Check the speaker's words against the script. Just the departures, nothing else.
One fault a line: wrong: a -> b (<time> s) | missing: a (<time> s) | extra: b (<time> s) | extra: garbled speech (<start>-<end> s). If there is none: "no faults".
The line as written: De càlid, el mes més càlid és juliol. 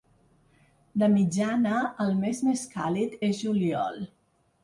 wrong: càlid -> mitjana (1.1 s)